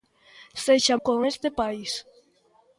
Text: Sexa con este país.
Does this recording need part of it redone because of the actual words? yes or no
no